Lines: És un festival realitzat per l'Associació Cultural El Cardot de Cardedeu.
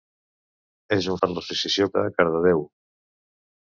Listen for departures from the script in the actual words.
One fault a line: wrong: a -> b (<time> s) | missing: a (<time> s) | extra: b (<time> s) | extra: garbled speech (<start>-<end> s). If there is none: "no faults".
missing: festival realitzat (1.2 s)
missing: Cultural El Cardot (1.9 s)